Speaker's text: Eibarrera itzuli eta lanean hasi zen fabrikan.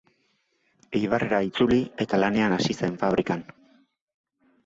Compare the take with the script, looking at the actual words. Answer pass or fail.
pass